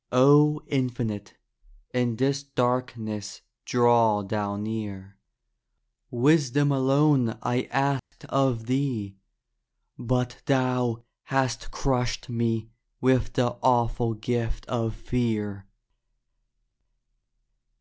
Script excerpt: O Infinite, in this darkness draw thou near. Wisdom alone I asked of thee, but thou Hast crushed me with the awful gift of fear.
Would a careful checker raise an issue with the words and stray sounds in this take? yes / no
yes